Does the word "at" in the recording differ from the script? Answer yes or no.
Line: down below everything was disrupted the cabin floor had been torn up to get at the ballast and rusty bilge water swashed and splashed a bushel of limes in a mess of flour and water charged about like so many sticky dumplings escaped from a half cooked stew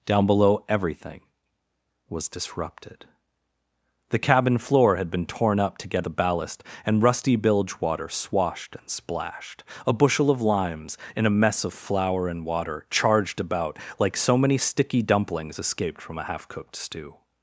yes